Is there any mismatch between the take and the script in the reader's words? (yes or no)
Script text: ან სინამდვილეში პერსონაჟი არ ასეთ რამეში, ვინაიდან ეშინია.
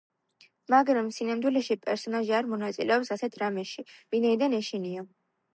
yes